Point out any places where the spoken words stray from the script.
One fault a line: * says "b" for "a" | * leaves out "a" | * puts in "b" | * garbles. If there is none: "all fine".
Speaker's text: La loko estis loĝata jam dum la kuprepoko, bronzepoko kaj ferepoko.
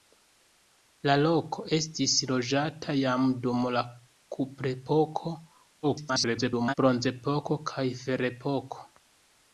* garbles